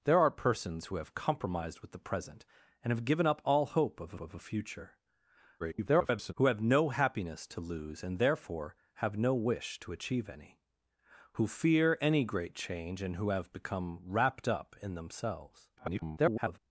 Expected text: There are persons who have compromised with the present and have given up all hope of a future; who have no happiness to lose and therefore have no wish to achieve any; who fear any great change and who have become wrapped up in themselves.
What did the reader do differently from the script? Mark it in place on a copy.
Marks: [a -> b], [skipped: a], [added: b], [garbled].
There are persons who have compromised with the present and have given up all hope of [added: of] a future; [garbled] who have no happiness to lose and therefore have no wish to achieve any; who fear any great change and who have become wrapped up in themselves. [garbled]